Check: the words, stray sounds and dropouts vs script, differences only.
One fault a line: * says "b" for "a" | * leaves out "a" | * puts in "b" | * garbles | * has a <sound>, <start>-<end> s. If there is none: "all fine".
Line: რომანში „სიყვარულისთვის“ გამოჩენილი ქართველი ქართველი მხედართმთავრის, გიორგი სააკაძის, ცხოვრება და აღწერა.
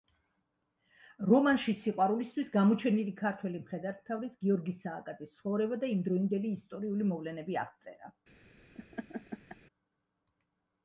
* leaves out "ქართველი"
* puts in "იმდროინდელი ისტორიული მოვლენები"
* has a laugh, 8.7-9.6 s